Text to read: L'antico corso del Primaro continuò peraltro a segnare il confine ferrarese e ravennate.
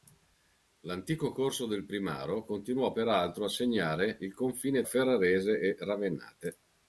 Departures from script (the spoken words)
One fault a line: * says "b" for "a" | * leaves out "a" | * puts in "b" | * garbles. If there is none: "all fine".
all fine